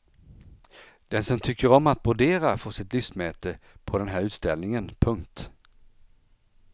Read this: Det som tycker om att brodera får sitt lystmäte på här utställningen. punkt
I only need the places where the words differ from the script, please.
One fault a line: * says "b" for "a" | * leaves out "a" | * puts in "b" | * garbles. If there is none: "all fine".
* says "Den" for "Det"
* puts in "den"